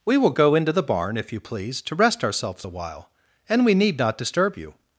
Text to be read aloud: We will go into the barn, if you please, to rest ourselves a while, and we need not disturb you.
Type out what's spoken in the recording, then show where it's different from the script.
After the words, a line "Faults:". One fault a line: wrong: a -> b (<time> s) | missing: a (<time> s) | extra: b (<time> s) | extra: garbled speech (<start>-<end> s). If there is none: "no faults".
We will go into the barn, if you please, to rest ourselves a while, and we need not disturb you.
Faults:
no faults